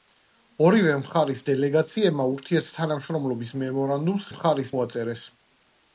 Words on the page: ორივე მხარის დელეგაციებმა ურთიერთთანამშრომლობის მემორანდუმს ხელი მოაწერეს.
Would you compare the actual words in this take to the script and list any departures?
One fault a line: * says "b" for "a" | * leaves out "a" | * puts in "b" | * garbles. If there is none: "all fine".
* says "მხარის" for "ხელი"